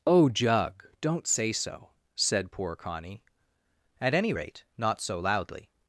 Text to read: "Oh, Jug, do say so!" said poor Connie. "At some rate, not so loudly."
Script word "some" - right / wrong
wrong